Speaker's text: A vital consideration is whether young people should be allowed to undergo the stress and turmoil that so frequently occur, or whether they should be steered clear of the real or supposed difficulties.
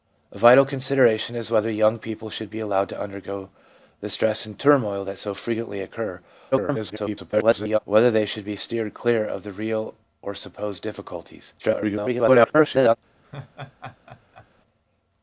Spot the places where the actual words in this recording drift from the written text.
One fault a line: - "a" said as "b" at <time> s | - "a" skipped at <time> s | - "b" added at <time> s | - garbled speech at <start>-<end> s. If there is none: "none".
- garbled speech at 6.5-7.8 s
- garbled speech at 11.6-13.0 s